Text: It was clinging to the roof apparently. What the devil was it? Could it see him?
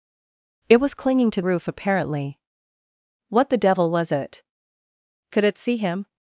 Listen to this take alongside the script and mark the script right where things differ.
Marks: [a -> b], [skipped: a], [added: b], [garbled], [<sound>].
It was clinging to [skipped: the] roof apparently. What the devil was it? Could it see him?